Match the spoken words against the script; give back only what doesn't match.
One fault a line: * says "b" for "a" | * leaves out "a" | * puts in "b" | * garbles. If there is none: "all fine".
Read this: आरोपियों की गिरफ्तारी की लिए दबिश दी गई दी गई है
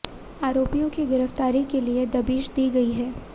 * says "के" for "की"
* leaves out "दी गई"